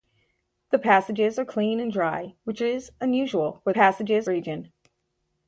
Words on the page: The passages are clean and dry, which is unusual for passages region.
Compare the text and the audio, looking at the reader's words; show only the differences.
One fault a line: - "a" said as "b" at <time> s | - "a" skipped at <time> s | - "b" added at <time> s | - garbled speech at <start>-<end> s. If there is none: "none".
none